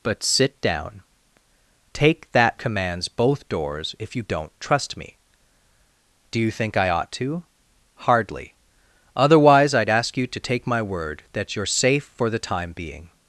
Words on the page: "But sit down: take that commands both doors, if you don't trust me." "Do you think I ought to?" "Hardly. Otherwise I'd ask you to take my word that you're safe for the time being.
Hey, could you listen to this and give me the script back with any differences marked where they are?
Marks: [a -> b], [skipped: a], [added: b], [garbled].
"But sit down: take that commands both doors, if you don't trust me." "Do you think I ought to?" "Hardly. Otherwise I'd ask you to take my word that you're safe for the time being.